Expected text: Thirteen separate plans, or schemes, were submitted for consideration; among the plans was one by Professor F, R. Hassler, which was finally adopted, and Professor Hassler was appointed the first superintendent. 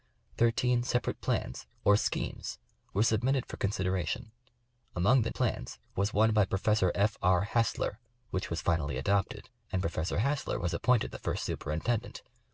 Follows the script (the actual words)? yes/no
yes